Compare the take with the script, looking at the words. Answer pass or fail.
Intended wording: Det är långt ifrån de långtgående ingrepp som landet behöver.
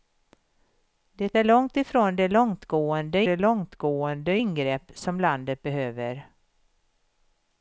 fail